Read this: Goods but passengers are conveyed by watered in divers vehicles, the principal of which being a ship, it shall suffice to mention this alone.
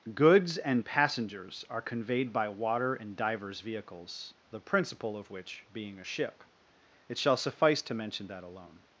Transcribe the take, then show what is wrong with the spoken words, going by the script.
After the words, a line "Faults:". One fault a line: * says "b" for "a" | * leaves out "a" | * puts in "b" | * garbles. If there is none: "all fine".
Goods and passengers are conveyed by water in divers vehicles, the principal of which being a ship, it shall suffice to mention that alone.
Faults:
* says "and" for "but"
* says "water" for "watered"
* says "that" for "this"